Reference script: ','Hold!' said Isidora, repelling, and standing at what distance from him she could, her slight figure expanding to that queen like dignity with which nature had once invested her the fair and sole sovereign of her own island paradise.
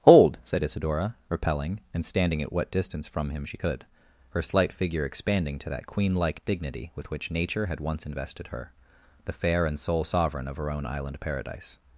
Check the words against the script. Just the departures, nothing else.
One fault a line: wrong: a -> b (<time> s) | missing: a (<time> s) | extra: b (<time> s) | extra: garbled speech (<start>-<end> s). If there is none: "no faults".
no faults